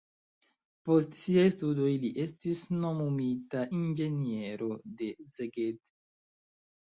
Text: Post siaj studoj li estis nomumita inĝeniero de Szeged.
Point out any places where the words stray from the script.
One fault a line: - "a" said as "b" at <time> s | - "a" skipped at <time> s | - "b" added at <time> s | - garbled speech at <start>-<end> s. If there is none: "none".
none